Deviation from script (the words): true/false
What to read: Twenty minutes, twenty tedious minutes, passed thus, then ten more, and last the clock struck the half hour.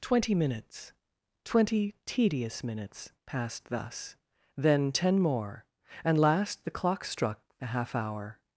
false